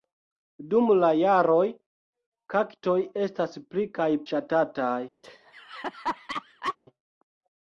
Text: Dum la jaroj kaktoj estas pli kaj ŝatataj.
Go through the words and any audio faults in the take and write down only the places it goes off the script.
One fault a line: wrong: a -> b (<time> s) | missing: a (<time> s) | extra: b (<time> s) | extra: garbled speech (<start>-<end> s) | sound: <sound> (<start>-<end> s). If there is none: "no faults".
sound: laugh (5.2-6.8 s)